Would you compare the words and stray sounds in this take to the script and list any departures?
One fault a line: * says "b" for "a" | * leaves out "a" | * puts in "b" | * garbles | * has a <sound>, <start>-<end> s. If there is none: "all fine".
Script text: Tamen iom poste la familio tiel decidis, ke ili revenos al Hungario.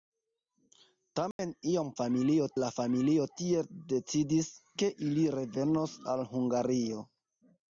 * has a dropout, 1.3-1.4 s
* says "familio" for "poste"